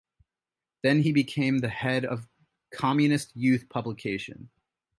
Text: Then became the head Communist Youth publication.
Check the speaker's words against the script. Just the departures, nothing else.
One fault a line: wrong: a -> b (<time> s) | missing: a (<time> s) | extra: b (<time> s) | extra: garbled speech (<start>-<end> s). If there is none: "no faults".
extra: he (1.0 s)
extra: of (2.0 s)